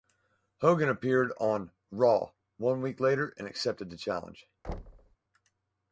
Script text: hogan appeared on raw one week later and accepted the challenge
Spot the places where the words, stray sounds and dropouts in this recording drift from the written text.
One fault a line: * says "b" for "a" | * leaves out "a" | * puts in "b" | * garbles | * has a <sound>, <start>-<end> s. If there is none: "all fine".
* has a thud, 4.6-5.2 s